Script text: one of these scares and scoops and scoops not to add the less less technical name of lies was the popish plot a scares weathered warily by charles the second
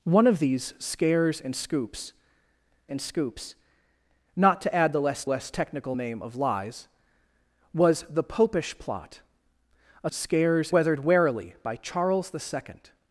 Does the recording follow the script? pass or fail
pass